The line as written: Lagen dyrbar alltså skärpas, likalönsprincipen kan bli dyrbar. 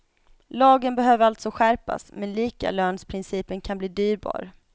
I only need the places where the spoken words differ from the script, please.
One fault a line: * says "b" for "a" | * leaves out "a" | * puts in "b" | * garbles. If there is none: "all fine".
* says "behöver" for "dyrbar"
* puts in "men"